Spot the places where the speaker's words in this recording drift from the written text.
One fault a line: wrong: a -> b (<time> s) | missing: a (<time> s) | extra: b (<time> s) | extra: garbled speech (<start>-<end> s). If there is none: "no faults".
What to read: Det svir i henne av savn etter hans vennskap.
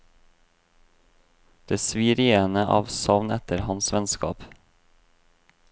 no faults